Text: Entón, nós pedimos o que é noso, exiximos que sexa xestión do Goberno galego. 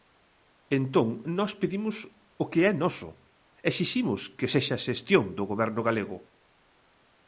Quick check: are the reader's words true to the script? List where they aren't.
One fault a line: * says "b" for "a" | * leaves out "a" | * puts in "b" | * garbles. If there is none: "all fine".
all fine